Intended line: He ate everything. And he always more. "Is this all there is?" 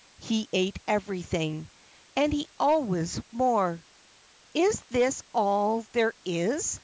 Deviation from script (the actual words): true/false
false